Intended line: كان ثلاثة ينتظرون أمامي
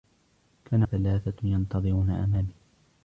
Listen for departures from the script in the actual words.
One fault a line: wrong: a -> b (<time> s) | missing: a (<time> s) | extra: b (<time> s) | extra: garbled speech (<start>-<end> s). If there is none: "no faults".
no faults